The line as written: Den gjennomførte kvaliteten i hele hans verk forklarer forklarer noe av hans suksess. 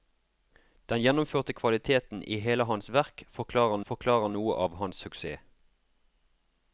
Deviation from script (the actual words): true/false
false